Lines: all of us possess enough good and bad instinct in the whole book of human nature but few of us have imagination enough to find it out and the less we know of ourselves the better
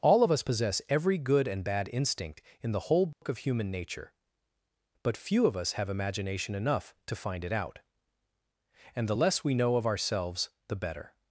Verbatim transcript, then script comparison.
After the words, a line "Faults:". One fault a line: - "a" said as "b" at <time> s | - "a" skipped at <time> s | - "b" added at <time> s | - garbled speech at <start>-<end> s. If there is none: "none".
all of us possess every good and bad instinct in the whole book of human nature but few of us have imagination enough to find it out and the less we know of ourselves the better
Faults:
- "enough" said as "every" at 0.9 s